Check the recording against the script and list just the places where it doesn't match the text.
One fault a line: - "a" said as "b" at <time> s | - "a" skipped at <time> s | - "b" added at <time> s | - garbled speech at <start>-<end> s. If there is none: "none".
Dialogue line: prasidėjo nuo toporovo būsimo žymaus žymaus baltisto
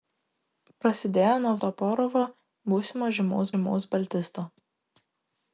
none